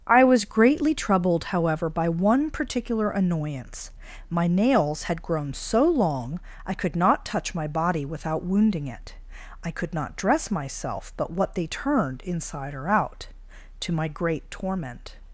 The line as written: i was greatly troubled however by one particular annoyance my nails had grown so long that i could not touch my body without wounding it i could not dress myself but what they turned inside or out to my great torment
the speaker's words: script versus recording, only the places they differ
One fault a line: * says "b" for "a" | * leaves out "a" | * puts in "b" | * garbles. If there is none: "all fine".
* leaves out "that"